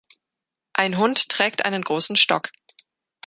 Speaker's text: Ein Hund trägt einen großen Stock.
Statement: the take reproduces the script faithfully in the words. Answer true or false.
true